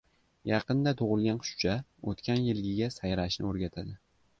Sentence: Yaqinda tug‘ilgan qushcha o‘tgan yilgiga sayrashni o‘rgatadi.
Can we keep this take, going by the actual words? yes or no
yes